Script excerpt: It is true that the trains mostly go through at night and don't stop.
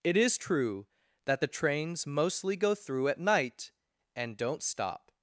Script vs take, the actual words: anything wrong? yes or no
no